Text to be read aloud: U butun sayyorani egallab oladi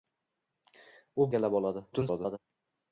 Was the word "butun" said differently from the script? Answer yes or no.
yes